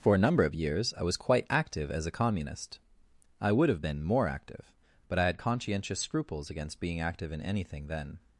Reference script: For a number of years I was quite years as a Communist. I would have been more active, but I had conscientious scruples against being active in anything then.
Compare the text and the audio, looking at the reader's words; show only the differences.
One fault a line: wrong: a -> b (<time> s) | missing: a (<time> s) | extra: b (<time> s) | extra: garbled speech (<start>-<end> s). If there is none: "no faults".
wrong: years -> active (1.5 s)